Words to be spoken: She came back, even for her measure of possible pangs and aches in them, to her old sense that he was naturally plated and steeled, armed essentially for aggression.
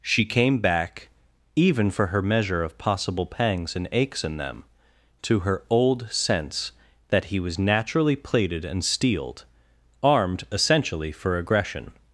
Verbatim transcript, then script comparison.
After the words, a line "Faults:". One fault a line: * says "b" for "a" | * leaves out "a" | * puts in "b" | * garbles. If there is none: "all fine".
She came back, even for her measure of possible pangs and aches in them, to her old sense that he was naturally plated and steeled, armed essentially for aggression.
Faults:
all fine